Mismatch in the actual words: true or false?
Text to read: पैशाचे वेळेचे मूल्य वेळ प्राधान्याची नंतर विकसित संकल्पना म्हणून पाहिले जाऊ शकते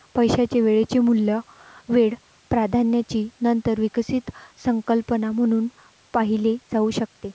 false